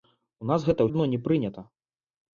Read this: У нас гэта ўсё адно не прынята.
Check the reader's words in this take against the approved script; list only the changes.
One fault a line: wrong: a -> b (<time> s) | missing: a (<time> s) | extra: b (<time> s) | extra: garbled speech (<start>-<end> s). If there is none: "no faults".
missing: ўсё (0.9 s)